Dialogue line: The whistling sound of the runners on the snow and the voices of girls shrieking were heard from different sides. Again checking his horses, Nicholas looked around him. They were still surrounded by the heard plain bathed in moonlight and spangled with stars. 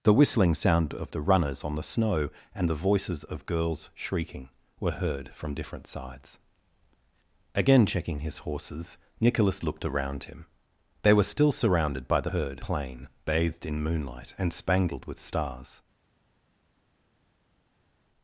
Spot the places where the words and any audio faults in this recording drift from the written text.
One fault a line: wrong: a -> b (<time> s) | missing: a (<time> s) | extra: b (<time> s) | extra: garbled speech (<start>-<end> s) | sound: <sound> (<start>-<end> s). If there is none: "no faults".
no faults